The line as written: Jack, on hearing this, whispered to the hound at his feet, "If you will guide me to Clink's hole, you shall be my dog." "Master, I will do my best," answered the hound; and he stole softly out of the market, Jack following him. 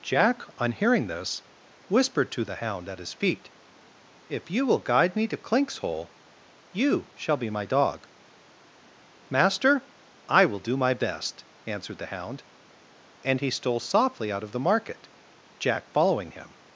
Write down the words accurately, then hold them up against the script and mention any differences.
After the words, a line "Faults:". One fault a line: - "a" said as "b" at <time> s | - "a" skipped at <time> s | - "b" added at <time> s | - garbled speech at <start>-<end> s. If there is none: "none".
Jack, on hearing this, whispered to the hound at his feet, "If you will guide me to Clink's hole, you shall be my dog." "Master, I will do my best," answered the hound; and he stole softly out of the market, Jack following him.
Faults:
none